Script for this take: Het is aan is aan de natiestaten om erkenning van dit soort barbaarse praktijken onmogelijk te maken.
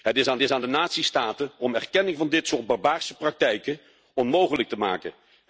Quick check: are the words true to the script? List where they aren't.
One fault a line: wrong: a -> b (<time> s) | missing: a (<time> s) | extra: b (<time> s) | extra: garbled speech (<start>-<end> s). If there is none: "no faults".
no faults